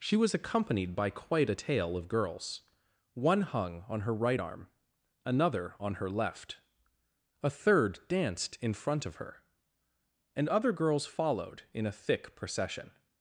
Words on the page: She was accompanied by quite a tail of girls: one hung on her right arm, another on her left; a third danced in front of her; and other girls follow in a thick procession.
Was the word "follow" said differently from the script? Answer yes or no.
yes